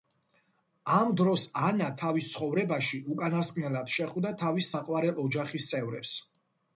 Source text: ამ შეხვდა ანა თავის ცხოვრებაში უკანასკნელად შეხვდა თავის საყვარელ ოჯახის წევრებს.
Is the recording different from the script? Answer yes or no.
yes